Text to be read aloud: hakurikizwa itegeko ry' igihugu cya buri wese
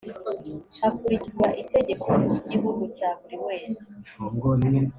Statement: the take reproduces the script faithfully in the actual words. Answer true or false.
true